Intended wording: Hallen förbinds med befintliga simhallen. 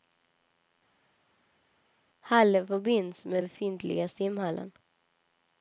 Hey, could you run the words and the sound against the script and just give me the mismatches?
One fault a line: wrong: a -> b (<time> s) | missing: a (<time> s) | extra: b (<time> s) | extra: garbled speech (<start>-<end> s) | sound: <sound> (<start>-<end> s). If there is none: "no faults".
no faults